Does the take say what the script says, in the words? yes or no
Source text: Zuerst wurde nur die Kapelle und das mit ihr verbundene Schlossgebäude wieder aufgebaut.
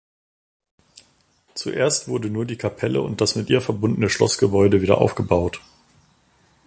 yes